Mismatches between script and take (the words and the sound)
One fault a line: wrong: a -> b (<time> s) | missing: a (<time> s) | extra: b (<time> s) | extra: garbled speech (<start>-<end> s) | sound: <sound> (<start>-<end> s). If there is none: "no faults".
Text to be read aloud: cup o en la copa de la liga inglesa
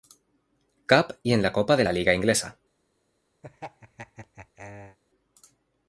wrong: o -> y (1.2 s)
sound: laugh (3.4-5.0 s)